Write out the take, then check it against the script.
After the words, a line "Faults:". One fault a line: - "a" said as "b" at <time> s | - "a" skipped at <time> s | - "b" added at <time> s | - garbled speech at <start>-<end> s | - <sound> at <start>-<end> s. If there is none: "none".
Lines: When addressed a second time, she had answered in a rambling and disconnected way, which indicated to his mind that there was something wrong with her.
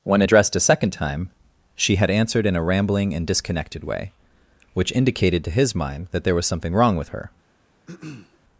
When addressed a second time, she had answered in a rambling and disconnected way, which indicated to his mind that there was something wrong with her.
Faults:
- throat clearing at 7.9-8.4 s